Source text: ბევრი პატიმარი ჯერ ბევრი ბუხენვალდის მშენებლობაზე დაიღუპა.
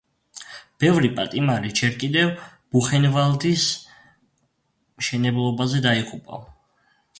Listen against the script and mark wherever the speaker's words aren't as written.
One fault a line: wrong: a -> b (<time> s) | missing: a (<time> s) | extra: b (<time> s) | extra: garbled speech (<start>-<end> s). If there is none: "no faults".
wrong: ბევრი -> კიდევ (2.0 s)